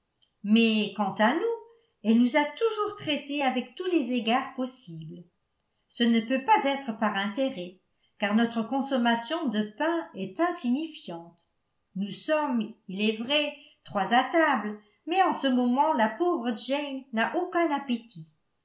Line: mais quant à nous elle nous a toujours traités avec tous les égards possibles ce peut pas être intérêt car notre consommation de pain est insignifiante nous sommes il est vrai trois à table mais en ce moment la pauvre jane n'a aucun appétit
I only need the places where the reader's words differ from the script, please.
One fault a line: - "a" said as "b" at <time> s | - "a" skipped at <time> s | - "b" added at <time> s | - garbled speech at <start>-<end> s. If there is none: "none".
- "ne" added at 6.0 s
- "par" added at 7.0 s